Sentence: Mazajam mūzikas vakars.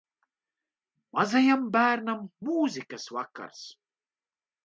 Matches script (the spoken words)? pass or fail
fail